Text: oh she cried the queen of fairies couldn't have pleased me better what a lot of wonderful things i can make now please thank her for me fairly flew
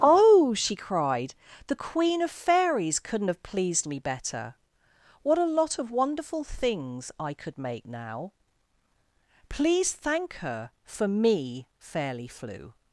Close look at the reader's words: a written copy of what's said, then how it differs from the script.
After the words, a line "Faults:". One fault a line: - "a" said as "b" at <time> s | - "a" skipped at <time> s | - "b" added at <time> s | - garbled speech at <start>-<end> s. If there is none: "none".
oh she cried the queen of fairies couldn't have pleased me better what a lot of wonderful things i could make now please thank her for me fairly flew
Faults:
- "can" said as "could" at 7.3 s